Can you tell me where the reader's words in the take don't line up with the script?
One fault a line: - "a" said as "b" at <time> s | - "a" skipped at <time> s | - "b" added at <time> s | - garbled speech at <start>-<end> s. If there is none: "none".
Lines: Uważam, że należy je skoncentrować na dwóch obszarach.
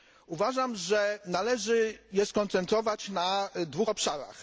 none